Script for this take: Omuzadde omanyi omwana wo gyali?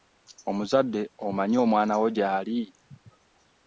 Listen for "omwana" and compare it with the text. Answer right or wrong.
right